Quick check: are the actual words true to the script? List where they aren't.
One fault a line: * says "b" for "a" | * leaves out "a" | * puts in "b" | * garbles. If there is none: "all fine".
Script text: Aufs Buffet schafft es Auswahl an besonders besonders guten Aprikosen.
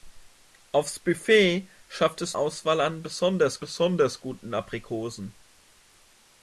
all fine